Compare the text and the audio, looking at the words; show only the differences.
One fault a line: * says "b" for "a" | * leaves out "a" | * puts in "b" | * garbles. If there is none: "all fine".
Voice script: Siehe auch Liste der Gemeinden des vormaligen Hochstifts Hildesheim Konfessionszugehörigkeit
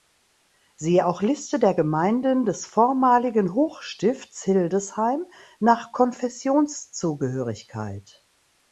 * puts in "nach"